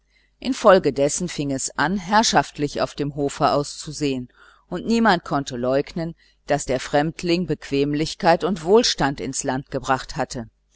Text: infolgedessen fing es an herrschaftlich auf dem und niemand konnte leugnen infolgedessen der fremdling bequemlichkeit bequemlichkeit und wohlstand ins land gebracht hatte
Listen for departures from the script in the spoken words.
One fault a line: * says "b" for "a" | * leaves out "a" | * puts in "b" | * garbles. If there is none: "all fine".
* puts in "hofe auszusehen"
* says "daß" for "infolgedessen"
* leaves out "bequemlichkeit"